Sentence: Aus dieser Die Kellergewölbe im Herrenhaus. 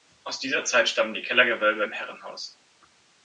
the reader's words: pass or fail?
fail